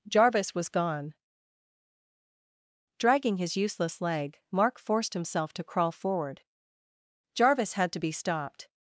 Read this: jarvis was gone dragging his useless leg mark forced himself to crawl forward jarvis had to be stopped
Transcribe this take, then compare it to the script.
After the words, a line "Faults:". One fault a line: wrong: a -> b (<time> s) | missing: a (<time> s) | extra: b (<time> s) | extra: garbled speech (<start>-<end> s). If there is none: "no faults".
jarvis was gone dragging his useless leg mark forced himself to crawl forward jarvis had to be stopped
Faults:
no faults